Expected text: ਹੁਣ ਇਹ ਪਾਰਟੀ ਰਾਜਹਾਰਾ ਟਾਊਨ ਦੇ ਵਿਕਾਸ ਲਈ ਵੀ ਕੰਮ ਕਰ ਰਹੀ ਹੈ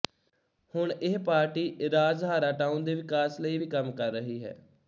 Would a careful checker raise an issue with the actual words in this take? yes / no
no